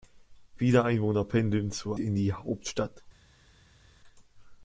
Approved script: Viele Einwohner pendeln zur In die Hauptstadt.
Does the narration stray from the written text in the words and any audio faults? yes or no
no